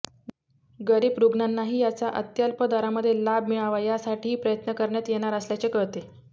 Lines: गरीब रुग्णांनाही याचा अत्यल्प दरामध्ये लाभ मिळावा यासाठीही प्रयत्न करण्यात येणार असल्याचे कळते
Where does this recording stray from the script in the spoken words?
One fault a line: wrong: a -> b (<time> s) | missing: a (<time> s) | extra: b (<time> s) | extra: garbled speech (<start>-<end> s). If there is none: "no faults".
no faults